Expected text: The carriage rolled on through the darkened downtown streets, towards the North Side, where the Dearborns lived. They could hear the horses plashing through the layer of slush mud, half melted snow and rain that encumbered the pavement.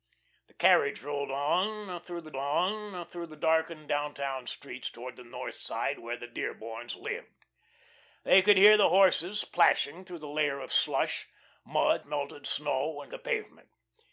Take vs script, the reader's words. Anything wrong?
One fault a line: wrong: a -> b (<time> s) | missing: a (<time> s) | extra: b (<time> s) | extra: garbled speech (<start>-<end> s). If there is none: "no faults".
extra: on through the (2.3 s)
missing: half (12.1 s)
missing: rain that encumbered (13.1 s)